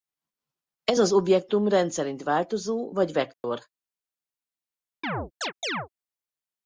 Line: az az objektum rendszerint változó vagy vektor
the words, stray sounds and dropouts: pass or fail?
fail